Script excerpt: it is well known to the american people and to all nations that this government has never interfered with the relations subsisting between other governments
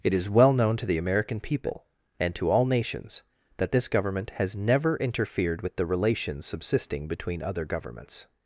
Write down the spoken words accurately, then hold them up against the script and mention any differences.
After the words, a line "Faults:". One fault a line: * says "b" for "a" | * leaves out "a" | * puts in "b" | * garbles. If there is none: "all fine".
it is well known to the american people and to all nations that this government has never interfered with the relations subsisting between other governments
Faults:
all fine